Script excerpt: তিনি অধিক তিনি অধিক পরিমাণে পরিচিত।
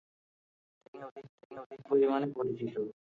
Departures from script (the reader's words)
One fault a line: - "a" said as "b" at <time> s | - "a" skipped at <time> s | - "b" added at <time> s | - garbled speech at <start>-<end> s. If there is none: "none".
none